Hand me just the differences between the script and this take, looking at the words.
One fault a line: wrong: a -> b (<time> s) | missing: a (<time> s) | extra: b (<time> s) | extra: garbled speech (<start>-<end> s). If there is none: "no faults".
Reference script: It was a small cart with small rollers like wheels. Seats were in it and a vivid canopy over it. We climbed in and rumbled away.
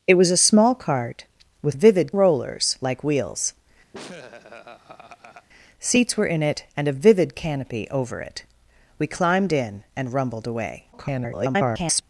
wrong: small -> vivid (1.7 s)
extra: garbled speech (10.9-12.0 s)